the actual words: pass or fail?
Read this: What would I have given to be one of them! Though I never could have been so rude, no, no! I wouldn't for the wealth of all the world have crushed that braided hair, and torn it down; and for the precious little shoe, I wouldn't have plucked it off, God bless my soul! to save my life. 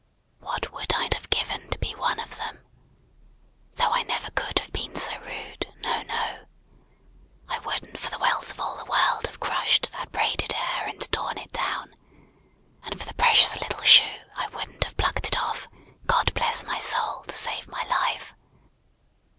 pass